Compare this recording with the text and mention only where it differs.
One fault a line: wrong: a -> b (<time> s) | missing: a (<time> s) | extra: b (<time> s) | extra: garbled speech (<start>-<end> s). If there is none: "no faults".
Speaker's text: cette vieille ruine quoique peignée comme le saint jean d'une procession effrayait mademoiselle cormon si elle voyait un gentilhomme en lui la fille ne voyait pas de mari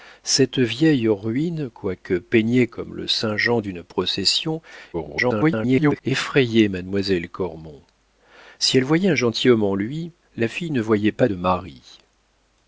extra: garbled speech (4.9-6.0 s)